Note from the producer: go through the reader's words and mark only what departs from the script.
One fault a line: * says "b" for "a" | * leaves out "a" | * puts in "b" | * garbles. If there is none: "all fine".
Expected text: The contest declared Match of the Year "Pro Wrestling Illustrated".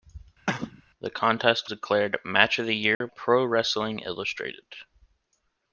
all fine